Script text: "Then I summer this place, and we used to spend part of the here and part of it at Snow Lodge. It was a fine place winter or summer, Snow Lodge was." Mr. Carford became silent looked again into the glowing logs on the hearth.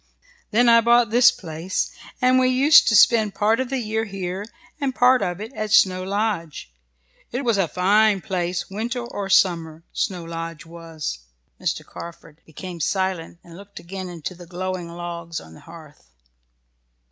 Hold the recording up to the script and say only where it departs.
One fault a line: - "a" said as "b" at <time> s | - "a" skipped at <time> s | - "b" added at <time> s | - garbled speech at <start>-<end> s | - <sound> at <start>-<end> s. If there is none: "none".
- "summer" said as "bought" at 0.8 s
- "year" added at 3.8 s
- "and" added at 13.4 s